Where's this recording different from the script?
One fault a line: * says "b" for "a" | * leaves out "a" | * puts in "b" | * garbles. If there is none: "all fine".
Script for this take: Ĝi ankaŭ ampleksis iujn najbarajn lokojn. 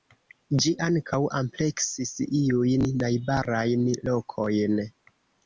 all fine